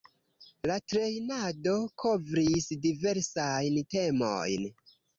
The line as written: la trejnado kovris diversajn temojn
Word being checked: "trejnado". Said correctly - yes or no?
yes